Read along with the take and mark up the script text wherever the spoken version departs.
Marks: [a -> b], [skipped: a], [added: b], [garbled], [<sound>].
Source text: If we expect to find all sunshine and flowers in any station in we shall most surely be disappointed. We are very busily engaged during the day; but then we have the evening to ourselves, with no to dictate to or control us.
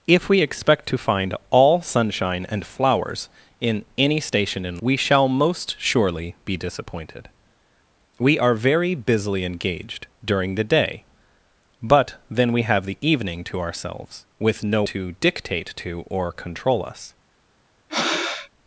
If we expect to find all sunshine and flowers in any station in we shall most surely be disappointed. We are very busily engaged during the day; but then we have the evening to ourselves, with no to dictate to or control us. [breath]